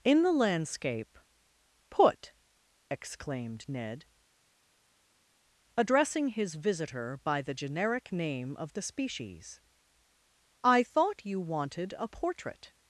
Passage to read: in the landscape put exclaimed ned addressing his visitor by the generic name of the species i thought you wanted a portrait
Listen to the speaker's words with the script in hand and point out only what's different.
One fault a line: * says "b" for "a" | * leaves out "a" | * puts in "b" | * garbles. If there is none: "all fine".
all fine